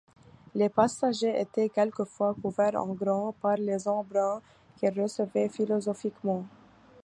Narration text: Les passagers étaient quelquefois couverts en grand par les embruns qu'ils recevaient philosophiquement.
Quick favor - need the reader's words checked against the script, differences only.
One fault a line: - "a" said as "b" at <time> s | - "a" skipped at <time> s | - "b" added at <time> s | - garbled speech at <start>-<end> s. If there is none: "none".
none